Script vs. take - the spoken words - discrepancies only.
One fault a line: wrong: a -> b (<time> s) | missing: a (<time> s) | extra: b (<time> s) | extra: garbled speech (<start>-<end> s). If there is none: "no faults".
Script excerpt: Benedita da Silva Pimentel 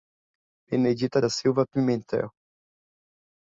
no faults